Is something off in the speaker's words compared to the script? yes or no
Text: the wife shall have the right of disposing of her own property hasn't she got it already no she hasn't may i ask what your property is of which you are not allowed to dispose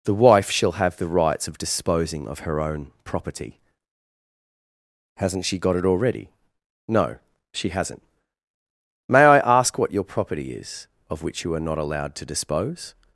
yes